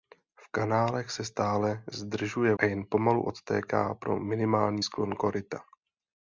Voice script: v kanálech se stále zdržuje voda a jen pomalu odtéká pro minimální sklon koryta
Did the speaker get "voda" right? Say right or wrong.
wrong